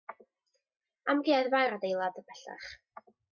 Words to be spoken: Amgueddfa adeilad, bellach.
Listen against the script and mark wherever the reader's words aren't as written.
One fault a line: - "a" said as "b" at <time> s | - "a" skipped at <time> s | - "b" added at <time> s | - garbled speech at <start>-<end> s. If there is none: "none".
- "yw'r" added at 1.6 s